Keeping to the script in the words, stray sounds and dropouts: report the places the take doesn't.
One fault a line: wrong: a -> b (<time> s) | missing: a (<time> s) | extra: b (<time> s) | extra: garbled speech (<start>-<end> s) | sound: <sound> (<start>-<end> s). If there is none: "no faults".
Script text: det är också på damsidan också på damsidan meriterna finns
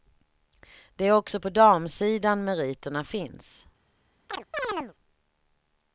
missing: också på damsidan (2.4 s)
sound: chirp (4.3-4.9 s)